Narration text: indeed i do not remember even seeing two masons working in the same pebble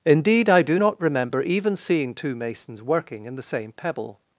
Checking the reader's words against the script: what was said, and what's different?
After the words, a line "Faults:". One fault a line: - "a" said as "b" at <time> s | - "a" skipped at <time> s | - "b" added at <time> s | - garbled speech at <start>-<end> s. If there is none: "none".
indeed i do not remember even seeing two masons working in the same pebble
Faults:
none